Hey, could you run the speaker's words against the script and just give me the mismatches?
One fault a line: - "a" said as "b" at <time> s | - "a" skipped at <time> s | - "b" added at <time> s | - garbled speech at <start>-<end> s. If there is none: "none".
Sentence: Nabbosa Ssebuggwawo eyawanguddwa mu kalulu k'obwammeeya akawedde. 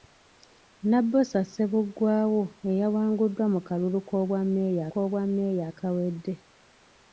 - "k'obwammeeya" added at 4.9 s